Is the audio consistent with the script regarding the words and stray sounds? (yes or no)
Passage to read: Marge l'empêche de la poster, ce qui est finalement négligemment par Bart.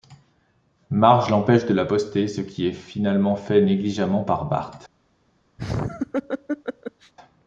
no